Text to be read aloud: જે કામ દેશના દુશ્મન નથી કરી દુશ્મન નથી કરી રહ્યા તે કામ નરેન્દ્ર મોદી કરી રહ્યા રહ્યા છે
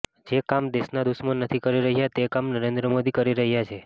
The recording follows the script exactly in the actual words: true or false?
false